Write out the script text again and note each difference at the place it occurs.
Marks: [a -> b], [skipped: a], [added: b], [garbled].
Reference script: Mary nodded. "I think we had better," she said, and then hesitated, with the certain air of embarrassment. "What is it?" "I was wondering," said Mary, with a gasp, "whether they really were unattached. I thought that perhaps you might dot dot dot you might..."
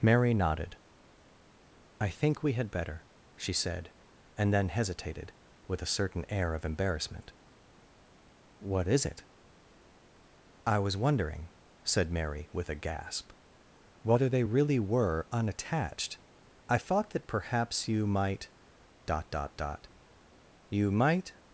Mary nodded. "I think we had better," she said, and then hesitated, with [the -> a] certain air of embarrassment. "What is it?" "I was wondering," said Mary, with a gasp, "whether they really were unattached. I thought that perhaps you might dot dot dot you might..."